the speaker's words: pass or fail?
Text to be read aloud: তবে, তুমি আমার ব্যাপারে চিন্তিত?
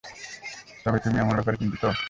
pass